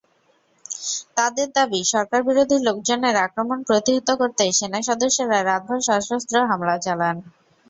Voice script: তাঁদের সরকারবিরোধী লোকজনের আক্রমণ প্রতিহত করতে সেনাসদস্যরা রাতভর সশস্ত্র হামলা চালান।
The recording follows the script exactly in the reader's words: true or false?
false